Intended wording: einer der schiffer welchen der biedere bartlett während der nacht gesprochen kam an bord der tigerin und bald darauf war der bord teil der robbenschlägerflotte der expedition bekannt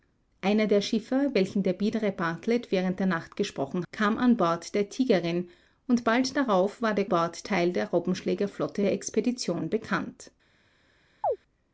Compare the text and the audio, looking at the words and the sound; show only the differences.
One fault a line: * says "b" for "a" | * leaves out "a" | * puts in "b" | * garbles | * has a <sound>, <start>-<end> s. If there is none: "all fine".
* has a chirp, 11.2-11.4 s